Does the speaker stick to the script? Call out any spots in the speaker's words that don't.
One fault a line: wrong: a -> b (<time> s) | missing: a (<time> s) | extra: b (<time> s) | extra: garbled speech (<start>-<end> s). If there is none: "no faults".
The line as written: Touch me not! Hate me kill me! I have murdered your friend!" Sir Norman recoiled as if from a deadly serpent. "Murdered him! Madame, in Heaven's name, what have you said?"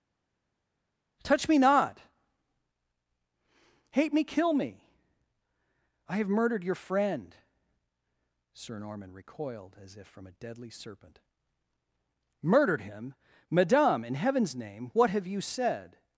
no faults